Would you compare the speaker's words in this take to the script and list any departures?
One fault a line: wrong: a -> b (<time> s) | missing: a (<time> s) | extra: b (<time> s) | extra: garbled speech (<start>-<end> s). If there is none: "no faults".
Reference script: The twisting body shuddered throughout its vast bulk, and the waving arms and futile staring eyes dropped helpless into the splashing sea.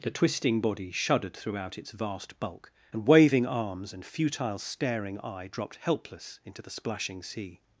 missing: the (3.1 s)
wrong: eyes -> eye (5.2 s)